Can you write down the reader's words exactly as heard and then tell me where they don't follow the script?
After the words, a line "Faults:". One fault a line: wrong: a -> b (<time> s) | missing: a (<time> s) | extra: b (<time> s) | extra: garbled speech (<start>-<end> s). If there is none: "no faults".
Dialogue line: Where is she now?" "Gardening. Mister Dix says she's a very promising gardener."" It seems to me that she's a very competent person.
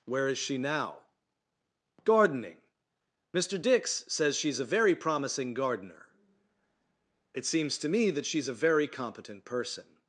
Where is she now?" "Gardening. Mister Dix says she's a very promising gardener."" It seems to me that she's a very competent person.
Faults:
no faults